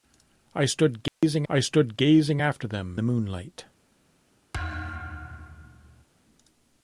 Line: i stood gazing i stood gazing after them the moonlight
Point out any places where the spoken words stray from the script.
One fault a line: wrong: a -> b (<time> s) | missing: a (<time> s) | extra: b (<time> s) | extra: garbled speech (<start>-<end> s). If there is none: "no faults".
no faults